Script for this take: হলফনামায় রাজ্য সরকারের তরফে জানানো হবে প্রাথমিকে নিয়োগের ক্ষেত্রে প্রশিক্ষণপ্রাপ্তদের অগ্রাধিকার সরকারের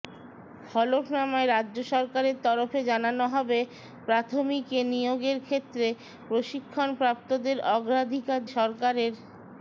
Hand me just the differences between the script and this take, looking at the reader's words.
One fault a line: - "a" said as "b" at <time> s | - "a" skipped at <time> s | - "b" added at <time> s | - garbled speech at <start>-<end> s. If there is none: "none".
none